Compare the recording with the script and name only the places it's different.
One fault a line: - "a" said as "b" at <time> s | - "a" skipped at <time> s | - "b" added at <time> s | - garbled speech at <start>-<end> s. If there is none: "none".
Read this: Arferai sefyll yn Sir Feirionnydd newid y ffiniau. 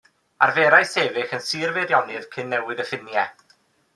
- "cyn" added at 2.4 s